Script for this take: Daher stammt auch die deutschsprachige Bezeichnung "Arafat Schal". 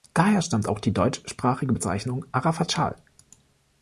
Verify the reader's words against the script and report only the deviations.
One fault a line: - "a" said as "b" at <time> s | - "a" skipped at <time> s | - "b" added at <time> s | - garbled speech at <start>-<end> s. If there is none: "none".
none